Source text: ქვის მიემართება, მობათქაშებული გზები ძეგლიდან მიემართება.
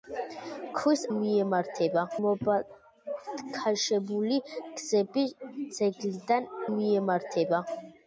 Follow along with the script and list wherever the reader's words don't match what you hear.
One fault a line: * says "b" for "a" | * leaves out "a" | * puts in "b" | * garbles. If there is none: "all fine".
all fine